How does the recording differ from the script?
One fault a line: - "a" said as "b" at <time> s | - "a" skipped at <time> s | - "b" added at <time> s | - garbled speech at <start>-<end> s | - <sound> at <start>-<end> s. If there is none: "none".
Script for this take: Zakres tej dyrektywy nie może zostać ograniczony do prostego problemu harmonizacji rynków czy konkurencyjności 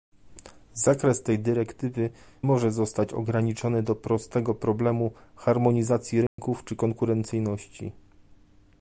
- "nie" skipped at 2.1 s
- dropout at 6.3-6.4 s